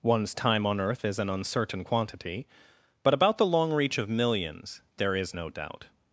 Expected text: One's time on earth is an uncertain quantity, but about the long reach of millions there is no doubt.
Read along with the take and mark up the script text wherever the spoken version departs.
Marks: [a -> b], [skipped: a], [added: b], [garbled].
One's time on earth is an uncertain quantity, but about the long reach of millions there is no doubt.